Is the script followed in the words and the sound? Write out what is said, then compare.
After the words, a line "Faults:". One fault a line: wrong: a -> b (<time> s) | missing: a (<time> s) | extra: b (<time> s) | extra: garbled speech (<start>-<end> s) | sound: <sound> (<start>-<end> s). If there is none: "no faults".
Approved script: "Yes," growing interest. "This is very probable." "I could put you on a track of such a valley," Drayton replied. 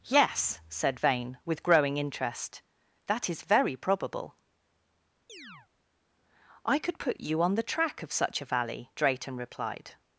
"Yes," said Vane, with growing interest. "That is very probable." "I could put you on the track of such a valley," Drayton replied.
Faults:
extra: said Vane with (0.7 s)
wrong: This -> That (3.1 s)
sound: chirp (5.3-5.7 s)
wrong: a -> the (7.5 s)